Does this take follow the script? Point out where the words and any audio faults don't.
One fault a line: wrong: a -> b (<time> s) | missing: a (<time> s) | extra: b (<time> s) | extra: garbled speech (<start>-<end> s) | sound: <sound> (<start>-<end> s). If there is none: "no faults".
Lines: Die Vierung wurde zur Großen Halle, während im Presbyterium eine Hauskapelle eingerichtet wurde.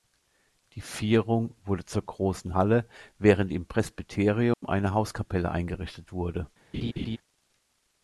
sound: dropout (4.5-4.6 s)
sound: laugh (6.7-7.2 s)